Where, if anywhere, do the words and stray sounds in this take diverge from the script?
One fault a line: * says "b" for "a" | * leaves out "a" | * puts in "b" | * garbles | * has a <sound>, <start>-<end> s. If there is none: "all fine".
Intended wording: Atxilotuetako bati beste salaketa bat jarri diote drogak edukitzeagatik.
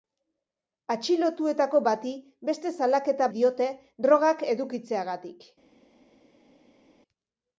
* leaves out "bat jarri"